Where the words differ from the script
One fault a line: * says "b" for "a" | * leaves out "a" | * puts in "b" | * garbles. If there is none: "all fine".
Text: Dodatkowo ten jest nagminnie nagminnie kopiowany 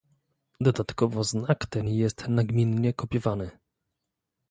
* puts in "znak"
* leaves out "nagminnie"